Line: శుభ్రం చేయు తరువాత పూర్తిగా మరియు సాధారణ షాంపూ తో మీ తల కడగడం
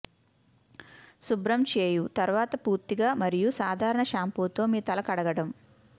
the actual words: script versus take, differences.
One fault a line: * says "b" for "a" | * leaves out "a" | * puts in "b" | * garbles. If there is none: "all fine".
all fine